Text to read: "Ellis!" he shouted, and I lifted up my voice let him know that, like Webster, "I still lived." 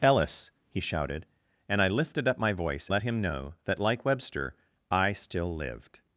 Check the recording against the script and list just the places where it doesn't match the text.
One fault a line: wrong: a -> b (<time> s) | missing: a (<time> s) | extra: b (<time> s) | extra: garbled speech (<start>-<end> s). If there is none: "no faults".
no faults